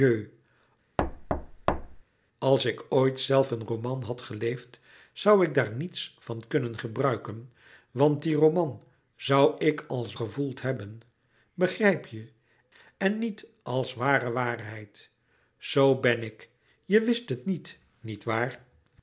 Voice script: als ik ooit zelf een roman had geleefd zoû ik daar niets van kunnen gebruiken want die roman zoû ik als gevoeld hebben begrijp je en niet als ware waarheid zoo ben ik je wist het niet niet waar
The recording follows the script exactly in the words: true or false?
true